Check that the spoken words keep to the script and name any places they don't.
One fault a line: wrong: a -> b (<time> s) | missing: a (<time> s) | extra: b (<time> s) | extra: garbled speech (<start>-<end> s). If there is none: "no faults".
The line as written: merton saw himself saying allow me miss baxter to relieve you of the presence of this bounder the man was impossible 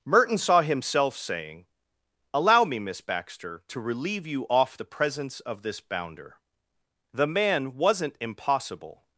wrong: of -> off (4.5 s)
wrong: was -> wasn't (7.7 s)